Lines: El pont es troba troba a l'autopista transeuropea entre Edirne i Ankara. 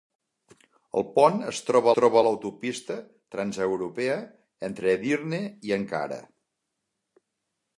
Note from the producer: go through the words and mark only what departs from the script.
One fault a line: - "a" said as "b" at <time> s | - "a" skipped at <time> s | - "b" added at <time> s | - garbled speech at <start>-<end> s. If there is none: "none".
none